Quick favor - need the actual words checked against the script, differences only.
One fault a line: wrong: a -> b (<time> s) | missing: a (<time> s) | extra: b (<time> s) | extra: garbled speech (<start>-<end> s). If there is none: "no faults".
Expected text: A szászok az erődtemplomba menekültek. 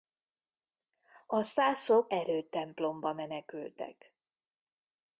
missing: az (2.1 s)